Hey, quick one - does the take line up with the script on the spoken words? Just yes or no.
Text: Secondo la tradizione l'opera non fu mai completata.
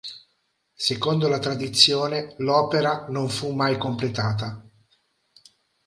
yes